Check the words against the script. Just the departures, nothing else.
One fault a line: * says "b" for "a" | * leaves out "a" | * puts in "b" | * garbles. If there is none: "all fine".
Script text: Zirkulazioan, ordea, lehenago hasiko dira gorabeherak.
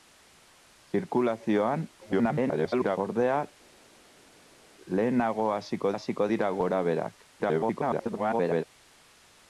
* garbles
* puts in "hasiko"
* garbles